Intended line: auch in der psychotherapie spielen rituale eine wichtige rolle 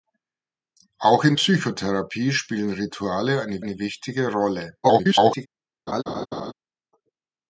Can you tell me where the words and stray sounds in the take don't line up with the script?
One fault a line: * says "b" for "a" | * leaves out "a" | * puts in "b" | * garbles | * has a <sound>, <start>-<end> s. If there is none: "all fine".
* leaves out "der"
* puts in "eine"
* garbles
* has a laugh, 5.9-6.5 s